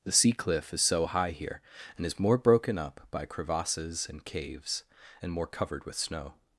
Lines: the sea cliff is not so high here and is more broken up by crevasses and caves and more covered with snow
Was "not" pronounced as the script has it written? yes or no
no